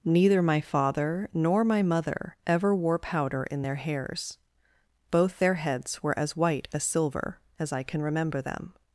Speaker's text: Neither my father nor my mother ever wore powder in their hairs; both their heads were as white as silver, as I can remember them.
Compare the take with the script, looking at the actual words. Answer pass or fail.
pass